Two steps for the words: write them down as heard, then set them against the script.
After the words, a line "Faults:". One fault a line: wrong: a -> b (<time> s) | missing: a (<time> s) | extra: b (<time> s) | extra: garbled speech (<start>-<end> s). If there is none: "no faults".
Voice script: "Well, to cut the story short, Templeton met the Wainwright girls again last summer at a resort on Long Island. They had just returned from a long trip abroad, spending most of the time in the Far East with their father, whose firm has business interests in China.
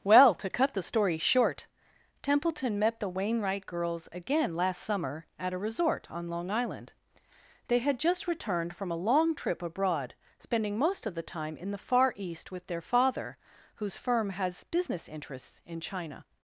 "Well, to cut the story short, Templeton met the Wainwright girls again last summer at a resort on Long Island. They had just returned from a long trip abroad, spending most of the time in the Far East with their father, whose firm has business interests in China.
Faults:
no faults